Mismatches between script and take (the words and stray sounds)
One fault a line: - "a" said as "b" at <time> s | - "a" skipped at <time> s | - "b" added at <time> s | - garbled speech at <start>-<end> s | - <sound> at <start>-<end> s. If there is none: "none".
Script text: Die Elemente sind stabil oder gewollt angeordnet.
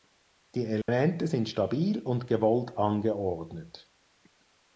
- dropout at 0.8-0.9 s
- "oder" said as "und" at 2.0 s